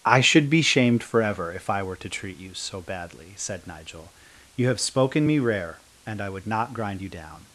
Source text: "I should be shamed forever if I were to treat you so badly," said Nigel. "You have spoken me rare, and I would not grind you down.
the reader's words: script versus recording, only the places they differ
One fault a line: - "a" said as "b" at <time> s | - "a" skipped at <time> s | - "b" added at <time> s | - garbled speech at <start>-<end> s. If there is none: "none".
none